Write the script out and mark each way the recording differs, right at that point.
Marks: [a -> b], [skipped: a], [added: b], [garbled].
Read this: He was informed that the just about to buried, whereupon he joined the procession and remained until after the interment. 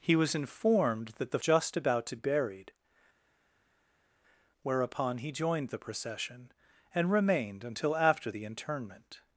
He was informed that the just about to buried, whereupon he joined the procession and remained until after the interment.